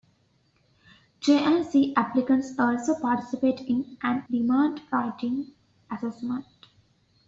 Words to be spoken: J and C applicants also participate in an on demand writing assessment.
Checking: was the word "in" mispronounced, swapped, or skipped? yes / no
no